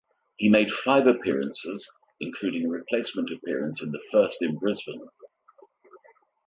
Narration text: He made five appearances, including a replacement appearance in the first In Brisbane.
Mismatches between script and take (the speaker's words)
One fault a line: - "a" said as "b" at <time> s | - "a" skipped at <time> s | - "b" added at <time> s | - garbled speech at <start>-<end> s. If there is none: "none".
none